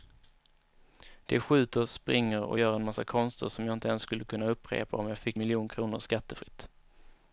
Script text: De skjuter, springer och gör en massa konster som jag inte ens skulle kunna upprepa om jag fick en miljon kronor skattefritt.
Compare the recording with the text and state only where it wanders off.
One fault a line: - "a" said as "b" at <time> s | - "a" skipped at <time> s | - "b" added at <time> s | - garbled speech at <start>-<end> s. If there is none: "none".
- "en" skipped at 5.4 s